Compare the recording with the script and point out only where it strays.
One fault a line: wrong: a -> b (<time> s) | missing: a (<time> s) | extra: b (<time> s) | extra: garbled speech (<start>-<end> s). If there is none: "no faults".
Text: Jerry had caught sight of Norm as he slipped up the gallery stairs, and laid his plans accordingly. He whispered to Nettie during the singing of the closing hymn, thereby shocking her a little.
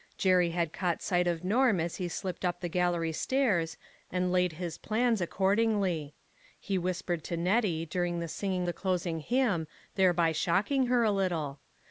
missing: of (8.7 s)